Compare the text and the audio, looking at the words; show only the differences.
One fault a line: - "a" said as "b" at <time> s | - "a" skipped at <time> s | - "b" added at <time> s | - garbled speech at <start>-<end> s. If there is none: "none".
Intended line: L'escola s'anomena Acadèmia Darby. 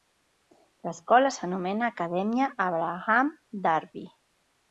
- "Abraham" added at 2.7 s